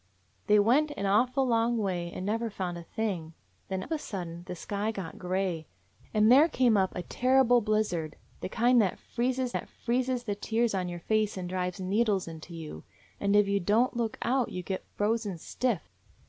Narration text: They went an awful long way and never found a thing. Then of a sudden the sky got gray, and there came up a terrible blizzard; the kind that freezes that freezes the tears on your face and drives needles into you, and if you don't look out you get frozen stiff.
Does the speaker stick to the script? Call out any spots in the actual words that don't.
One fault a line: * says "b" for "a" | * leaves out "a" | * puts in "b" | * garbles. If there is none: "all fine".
all fine